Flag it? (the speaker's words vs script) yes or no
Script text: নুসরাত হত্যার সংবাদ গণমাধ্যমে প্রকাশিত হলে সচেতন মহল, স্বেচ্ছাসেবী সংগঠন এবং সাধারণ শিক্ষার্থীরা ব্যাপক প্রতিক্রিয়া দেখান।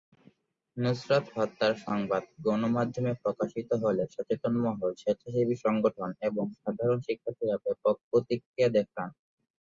no